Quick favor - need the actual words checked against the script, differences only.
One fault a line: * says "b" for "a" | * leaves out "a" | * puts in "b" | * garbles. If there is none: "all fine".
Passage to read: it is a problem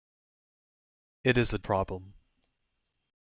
all fine